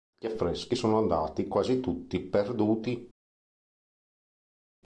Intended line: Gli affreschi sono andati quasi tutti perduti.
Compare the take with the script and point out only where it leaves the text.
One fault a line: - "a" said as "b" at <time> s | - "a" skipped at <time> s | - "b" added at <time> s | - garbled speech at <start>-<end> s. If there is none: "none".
none